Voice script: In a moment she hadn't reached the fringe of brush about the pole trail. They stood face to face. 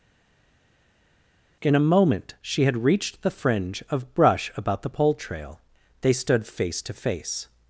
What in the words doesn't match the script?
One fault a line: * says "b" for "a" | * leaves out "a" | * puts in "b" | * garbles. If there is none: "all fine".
* says "had" for "hadn't"